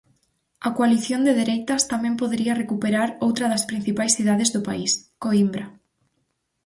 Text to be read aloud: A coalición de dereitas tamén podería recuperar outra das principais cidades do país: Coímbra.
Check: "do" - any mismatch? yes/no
no